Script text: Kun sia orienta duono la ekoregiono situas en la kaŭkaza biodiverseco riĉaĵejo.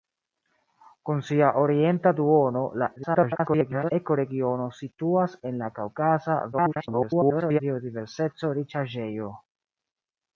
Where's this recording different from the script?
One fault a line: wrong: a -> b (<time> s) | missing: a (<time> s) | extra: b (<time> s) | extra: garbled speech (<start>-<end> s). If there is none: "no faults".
extra: garbled speech (3.0-3.9 s)
extra: garbled speech (6.5-7.6 s)